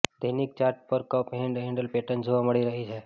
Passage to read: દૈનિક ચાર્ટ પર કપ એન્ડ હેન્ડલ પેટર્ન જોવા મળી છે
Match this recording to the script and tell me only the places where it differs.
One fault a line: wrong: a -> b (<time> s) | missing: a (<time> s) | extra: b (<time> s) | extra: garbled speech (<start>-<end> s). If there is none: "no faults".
extra: રહી (2.7 s)